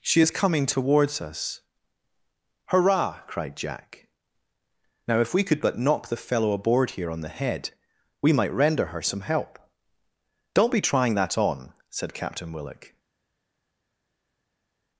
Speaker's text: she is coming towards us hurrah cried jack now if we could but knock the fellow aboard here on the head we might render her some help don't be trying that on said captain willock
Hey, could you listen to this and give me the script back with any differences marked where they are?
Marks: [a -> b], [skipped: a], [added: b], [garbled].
she is coming towards us hurrah cried jack now if we could but knock the fellow aboard here on the head we might render her some help don't be trying that on said captain willock